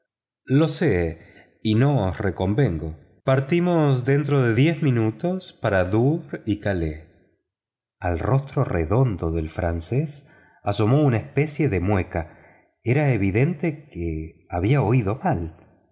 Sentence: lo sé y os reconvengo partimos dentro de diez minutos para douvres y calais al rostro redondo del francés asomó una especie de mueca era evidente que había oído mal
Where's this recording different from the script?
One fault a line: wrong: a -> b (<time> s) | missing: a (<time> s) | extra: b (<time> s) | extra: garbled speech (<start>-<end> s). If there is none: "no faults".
extra: no (1.8 s)